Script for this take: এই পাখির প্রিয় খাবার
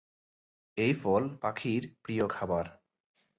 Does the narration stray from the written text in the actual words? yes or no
yes